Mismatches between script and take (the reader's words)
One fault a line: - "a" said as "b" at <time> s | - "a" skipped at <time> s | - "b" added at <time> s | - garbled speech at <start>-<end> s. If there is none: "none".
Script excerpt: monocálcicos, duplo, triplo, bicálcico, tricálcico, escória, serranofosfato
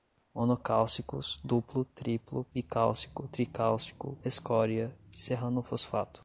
none